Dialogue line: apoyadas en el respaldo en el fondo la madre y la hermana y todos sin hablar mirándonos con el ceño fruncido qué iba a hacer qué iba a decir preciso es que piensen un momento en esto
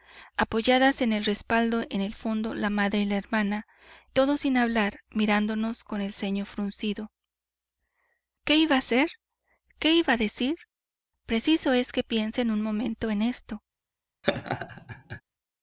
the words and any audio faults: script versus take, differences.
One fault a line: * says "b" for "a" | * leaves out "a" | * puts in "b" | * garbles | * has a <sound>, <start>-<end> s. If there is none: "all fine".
* leaves out "y"
* has a laugh, 14.2-15.2 s